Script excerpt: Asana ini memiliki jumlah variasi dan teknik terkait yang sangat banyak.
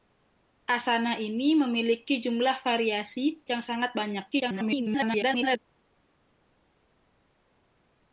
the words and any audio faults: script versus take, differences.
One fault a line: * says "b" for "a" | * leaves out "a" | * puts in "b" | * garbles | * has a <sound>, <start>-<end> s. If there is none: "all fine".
* leaves out "dan teknik terkait"
* garbles